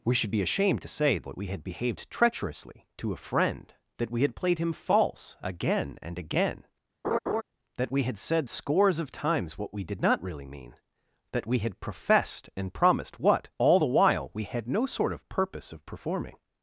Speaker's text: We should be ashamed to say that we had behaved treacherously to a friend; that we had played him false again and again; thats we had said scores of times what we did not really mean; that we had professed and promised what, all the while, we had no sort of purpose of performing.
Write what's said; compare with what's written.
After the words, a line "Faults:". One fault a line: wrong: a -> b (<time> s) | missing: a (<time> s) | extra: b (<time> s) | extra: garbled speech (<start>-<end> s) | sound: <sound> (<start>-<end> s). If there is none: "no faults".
We should be ashamed to say that we had behaved treacherously to a friend; that we had played him false again and again; that we had said scores of times what we did not really mean; that we had professed and promised what, all the while, we had no sort of purpose of performing.
Faults:
sound: laugh (7.0-7.4 s)
wrong: thats -> that (7.8 s)